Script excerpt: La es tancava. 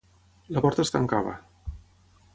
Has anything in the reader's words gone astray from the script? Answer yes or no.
yes